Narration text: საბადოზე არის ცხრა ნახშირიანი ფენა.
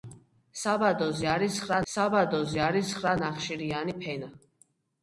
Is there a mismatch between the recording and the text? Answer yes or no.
yes